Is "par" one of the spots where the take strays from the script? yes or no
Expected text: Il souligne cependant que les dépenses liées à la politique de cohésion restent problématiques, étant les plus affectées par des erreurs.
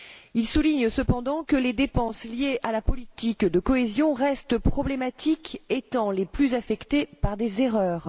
no